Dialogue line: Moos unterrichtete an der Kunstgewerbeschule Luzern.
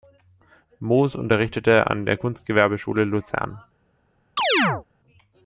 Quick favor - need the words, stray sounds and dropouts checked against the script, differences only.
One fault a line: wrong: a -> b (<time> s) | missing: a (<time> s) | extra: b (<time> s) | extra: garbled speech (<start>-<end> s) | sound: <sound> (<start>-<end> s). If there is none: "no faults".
sound: chirp (4.4-4.8 s)